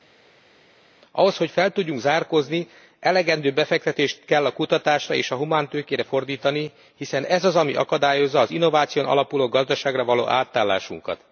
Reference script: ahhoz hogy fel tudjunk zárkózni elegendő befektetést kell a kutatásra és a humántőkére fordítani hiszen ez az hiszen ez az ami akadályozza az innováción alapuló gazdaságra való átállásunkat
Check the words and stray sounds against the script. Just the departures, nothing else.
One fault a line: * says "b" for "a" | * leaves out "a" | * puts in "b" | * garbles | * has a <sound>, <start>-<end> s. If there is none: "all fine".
* leaves out "hiszen ez az"